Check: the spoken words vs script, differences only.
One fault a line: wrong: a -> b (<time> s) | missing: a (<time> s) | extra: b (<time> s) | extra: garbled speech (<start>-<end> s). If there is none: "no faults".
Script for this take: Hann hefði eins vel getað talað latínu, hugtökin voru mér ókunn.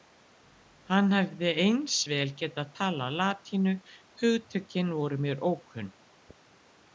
no faults